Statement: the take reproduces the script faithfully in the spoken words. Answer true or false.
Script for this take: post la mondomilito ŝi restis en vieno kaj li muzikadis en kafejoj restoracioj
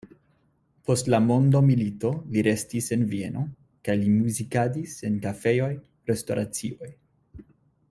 false